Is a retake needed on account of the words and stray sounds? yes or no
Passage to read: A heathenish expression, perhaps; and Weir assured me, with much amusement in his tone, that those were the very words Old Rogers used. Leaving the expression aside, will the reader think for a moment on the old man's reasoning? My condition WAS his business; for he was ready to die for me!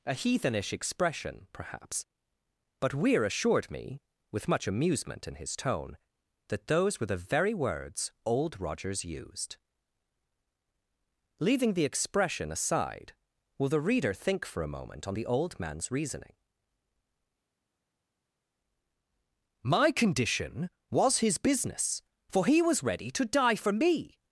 yes